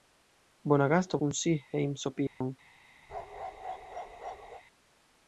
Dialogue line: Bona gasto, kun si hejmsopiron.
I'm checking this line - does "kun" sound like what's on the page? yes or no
yes